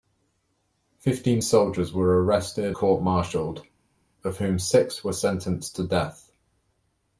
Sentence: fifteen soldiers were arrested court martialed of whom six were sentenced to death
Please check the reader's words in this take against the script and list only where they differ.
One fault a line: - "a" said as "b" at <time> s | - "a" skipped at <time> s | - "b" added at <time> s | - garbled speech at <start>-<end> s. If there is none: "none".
none